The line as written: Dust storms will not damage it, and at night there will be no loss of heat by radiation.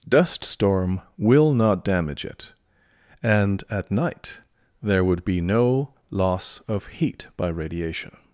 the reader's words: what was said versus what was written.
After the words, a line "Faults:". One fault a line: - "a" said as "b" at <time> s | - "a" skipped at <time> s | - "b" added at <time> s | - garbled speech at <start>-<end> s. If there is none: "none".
Dust storm will not damage it, and at night there would be no loss of heat by radiation.
Faults:
- "storms" said as "storm" at 0.4 s
- "will" said as "would" at 5.0 s